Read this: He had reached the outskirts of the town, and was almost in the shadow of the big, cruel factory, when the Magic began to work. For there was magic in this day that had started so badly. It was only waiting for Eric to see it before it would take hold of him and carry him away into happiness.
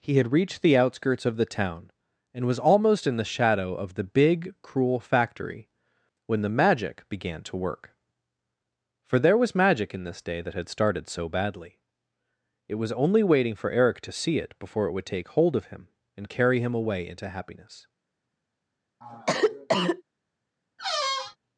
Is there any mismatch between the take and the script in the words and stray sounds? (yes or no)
yes